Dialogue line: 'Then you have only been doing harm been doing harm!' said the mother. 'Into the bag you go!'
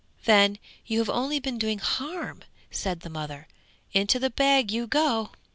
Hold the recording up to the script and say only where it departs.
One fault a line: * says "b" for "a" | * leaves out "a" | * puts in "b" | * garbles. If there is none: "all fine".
* leaves out "been doing harm"